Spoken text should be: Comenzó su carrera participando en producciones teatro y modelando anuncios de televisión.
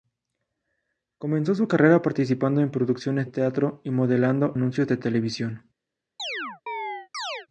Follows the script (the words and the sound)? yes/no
no